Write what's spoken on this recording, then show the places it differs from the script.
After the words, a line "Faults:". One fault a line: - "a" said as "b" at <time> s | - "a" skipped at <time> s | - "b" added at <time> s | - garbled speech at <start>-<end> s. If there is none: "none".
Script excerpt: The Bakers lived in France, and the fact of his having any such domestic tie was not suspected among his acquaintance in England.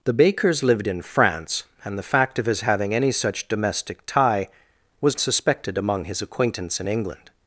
The Bakers lived in France, and the fact of his having any such domestic tie was suspected among his acquaintance in England.
Faults:
- "not" skipped at 5.2 s